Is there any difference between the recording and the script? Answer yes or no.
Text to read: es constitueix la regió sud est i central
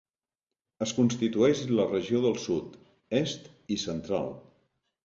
yes